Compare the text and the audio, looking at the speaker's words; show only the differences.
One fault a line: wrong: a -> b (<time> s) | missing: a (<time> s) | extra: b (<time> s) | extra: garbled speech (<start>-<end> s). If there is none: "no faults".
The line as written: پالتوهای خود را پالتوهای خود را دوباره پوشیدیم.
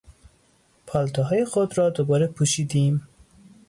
missing: پالتوهای خود را (1.9 s)